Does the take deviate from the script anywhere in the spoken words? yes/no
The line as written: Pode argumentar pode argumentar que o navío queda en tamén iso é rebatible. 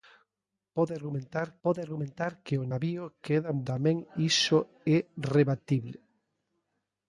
no